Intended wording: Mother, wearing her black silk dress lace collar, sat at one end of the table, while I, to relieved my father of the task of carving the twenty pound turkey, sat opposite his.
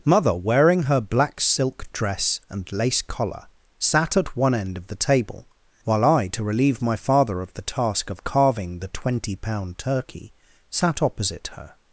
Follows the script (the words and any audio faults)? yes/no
no